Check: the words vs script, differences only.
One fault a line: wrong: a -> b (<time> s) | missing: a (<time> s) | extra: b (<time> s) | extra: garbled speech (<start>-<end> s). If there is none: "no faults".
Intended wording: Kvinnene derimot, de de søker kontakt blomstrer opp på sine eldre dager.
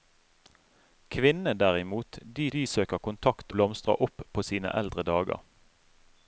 no faults